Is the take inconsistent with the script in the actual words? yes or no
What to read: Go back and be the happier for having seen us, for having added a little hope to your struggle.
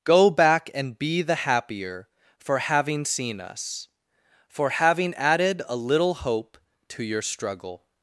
no